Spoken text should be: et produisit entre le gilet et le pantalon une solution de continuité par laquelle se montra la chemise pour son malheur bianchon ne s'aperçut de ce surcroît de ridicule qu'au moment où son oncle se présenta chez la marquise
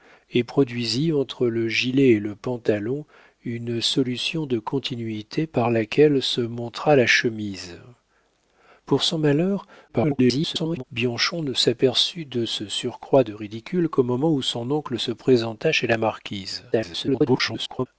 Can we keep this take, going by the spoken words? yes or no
no